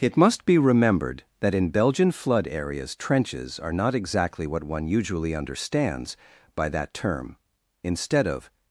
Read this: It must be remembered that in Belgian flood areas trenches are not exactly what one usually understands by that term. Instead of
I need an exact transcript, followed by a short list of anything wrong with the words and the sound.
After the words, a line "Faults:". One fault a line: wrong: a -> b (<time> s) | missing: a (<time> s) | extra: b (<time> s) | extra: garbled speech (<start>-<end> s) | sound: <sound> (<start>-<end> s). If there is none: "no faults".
It must be remembered that in Belgian flood areas trenches are not exactly what one usually understands by that term. Instead of
Faults:
no faults